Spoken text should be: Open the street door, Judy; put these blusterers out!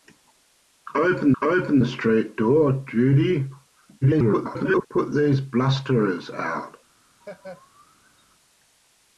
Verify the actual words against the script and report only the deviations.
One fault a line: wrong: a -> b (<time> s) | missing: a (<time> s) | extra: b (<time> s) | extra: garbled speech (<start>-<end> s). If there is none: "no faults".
extra: open (1.4 s)
extra: garbled speech (4.0-4.9 s)